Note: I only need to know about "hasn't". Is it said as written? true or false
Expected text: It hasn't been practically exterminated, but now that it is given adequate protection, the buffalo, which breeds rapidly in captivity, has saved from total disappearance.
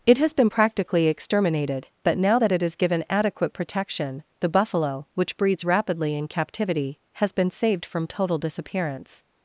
false